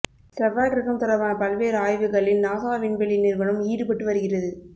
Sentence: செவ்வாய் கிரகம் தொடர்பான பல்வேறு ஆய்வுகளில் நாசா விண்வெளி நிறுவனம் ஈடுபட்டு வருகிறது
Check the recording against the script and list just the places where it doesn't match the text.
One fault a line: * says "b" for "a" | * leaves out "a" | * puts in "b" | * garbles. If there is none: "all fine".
all fine